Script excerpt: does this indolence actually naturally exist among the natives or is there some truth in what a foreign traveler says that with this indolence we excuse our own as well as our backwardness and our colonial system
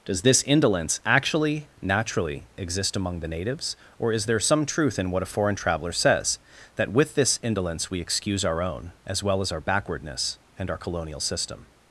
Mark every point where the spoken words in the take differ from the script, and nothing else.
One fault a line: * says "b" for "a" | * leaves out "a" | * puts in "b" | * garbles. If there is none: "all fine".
all fine